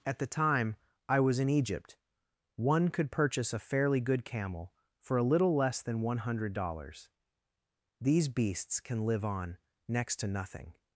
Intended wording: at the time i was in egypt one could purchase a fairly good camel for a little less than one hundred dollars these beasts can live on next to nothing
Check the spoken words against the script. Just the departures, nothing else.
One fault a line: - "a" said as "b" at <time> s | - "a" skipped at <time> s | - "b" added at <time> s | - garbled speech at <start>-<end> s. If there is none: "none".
none